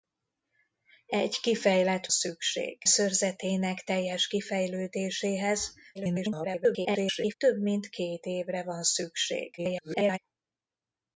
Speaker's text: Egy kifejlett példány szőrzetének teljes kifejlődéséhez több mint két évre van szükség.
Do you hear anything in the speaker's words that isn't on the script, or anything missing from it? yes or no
yes